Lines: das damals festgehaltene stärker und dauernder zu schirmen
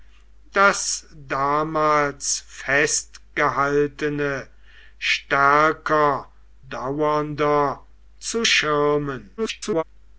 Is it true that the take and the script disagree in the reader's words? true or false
true